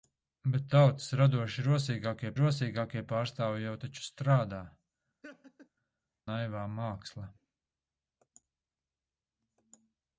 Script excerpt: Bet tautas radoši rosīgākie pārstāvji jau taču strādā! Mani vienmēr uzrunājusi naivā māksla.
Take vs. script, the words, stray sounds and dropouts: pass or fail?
fail